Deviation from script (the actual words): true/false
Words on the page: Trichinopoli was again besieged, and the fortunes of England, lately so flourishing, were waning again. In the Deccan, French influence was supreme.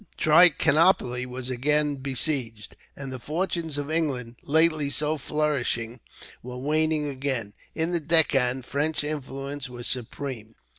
false